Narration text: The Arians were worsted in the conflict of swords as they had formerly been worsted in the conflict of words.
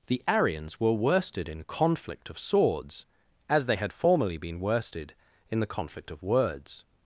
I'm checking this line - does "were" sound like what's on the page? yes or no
yes